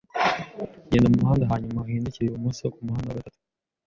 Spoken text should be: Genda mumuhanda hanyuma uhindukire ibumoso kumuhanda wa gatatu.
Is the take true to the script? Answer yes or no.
yes